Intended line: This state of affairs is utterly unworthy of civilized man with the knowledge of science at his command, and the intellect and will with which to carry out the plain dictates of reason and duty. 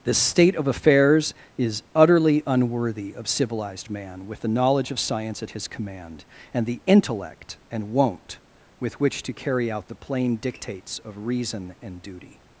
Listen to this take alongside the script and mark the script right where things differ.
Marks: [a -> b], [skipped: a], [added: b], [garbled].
This state of affairs is utterly unworthy of civilized man with the knowledge of science at his command, and the intellect and [will -> won't] with which to carry out the plain dictates of reason and duty.